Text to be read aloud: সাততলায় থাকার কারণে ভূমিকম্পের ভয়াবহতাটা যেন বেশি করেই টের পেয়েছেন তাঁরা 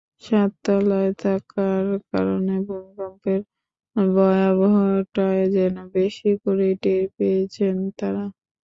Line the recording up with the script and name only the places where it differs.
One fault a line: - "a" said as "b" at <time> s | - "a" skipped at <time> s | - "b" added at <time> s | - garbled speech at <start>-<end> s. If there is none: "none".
none